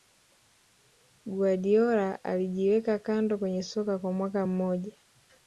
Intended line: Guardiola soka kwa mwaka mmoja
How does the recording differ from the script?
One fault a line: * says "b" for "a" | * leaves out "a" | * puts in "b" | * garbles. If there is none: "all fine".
* puts in "alijiweka kando kwenye"